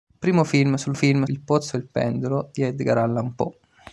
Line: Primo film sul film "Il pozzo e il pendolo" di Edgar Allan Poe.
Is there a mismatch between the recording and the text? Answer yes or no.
no